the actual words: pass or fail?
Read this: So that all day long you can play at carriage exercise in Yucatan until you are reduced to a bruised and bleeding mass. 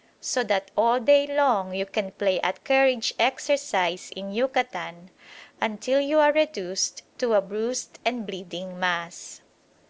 pass